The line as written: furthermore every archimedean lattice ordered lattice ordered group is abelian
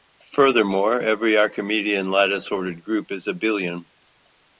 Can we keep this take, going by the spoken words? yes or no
no